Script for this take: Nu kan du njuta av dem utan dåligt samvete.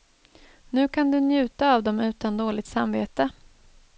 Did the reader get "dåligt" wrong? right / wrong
right